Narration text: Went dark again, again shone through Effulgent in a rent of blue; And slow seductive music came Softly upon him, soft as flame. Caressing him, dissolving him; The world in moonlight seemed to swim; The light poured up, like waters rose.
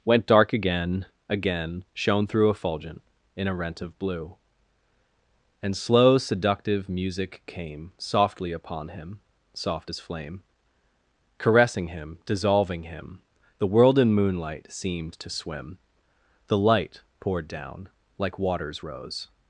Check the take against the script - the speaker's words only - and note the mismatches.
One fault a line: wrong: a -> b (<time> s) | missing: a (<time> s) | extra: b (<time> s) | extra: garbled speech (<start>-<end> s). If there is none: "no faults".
wrong: up -> down (17.5 s)